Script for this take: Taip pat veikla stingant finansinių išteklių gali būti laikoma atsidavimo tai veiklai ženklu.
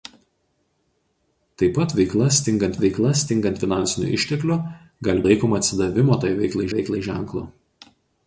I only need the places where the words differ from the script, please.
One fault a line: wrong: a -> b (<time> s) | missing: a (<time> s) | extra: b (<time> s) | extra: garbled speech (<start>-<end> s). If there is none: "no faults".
extra: veikla stingant (2.8 s)
missing: būti (5.2 s)
extra: veiklai (6.8 s)